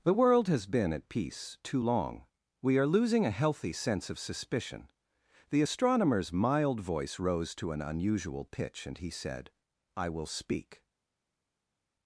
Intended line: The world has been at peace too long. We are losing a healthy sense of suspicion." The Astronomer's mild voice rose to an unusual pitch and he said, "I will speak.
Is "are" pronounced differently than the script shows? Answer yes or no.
no